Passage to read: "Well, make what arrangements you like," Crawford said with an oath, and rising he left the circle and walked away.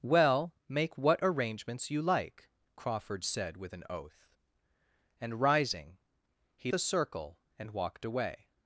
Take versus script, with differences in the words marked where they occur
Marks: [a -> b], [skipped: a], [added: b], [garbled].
"Well, make what arrangements you like," Crawford said with an oath, and rising he [skipped: left] the circle and walked away.